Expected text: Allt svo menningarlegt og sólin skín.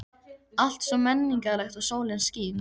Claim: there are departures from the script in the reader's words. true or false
false